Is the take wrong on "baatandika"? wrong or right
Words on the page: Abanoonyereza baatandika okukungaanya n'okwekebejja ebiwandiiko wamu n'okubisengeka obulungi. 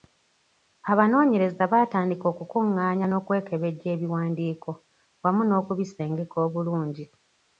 right